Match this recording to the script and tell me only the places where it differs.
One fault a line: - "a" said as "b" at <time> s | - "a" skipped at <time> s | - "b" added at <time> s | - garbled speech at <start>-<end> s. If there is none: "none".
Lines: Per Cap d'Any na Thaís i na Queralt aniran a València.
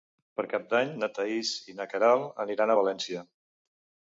none